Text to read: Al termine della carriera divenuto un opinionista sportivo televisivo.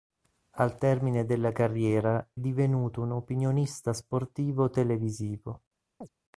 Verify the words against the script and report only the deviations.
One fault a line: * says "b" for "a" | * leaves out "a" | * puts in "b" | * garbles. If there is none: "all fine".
all fine